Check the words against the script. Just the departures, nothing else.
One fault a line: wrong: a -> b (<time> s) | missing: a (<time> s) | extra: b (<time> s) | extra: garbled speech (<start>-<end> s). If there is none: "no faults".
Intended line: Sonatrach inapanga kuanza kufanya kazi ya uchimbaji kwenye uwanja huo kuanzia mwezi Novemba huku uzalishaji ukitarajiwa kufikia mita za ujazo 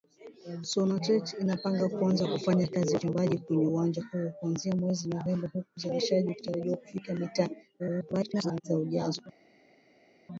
extra: garbled speech (7.8-8.6 s)